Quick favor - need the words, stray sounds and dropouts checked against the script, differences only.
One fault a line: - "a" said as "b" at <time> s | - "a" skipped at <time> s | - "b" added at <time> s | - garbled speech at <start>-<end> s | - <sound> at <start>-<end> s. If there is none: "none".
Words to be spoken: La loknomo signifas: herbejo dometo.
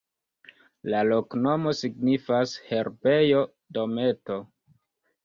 none